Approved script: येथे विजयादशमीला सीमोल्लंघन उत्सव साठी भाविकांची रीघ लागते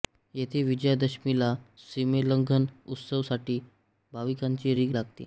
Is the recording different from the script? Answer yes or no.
no